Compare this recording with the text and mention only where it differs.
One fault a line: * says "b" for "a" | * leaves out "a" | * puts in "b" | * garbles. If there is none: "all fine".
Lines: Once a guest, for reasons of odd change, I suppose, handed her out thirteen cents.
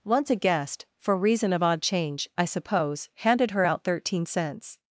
* says "reason" for "reasons"